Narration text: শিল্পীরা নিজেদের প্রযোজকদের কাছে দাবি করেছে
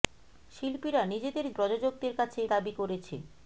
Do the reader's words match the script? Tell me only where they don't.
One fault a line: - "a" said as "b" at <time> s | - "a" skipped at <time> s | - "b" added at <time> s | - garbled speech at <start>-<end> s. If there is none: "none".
none